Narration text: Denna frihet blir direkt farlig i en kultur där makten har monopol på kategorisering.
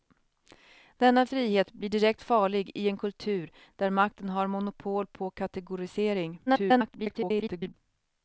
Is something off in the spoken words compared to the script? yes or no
yes